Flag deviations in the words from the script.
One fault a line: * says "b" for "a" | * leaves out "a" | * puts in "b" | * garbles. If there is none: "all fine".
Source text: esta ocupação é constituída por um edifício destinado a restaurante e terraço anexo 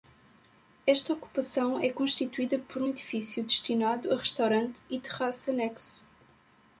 all fine